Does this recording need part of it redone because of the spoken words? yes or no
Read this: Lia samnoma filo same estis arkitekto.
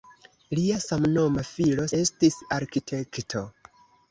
yes